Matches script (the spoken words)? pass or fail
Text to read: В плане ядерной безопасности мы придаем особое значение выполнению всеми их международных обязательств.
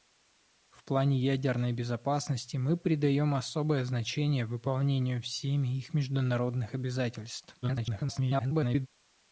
fail